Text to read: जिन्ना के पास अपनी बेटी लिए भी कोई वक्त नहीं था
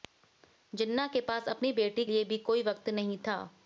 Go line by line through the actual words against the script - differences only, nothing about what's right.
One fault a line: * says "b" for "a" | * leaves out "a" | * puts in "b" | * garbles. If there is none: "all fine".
all fine